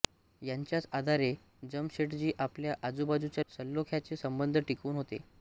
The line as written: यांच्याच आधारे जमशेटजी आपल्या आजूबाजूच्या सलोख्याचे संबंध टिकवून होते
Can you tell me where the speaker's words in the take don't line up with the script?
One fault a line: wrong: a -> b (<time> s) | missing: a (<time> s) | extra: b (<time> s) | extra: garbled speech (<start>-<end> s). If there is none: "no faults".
no faults